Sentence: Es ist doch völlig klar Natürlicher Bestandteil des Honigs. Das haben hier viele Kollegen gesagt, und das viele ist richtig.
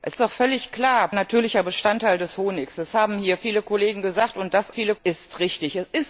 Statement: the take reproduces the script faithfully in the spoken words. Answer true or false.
true